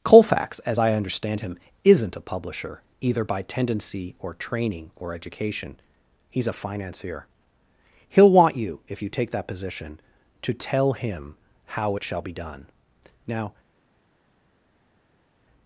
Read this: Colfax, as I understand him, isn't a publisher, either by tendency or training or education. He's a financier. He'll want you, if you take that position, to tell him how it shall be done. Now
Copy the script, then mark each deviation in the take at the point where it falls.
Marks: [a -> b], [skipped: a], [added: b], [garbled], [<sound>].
Colfax, as I understand him, isn't a publisher, either by tendency or training or education. He's a financier. He'll want you, if you take that position, to tell him how it shall be done. Now